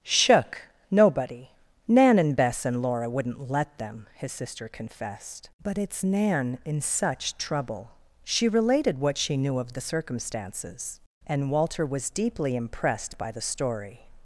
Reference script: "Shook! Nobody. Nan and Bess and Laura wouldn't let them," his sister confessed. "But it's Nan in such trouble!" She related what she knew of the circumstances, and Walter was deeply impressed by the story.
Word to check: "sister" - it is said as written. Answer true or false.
true